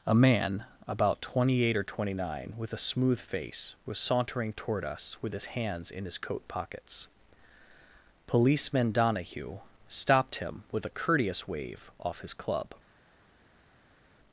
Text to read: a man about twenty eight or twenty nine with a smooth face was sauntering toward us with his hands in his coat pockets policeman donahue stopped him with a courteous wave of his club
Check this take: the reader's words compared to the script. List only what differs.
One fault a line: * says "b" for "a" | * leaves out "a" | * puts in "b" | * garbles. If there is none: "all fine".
* says "off" for "of"